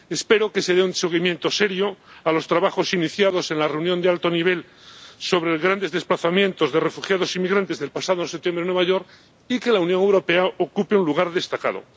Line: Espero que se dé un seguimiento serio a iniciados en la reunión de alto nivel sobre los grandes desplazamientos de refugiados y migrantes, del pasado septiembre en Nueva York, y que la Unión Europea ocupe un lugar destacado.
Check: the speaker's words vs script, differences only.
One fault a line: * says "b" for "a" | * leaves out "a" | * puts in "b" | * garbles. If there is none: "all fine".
* puts in "los trabajos"